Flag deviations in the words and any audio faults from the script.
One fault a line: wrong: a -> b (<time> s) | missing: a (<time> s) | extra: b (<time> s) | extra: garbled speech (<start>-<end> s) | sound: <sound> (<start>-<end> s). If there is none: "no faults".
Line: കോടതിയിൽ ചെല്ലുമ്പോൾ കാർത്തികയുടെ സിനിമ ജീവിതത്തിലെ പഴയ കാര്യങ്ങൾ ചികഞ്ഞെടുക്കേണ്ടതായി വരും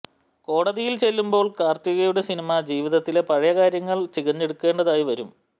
no faults